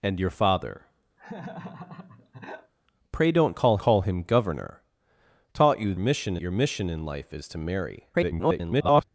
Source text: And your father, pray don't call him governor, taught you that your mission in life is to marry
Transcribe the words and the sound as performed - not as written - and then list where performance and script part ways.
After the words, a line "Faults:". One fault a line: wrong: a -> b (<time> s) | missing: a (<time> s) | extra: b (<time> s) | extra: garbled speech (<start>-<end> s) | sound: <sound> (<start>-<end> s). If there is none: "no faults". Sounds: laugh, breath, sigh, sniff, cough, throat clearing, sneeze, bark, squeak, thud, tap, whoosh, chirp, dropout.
And your father, pray don't call call him governor, taught you mission your mission in life is to marry [garbled]
Faults:
sound: laugh (1.2-2.7 s)
extra: call (3.8 s)
wrong: that -> mission (6.0 s)
extra: garbled speech (8.1-9.0 s)